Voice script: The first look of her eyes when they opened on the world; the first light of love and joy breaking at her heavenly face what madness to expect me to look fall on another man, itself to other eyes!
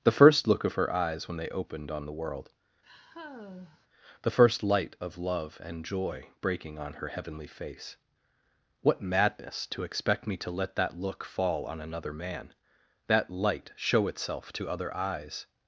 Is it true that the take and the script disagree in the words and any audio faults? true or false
true